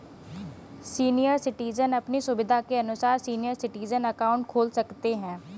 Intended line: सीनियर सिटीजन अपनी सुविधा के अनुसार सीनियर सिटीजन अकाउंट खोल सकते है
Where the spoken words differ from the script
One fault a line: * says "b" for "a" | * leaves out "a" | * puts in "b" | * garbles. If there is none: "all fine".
all fine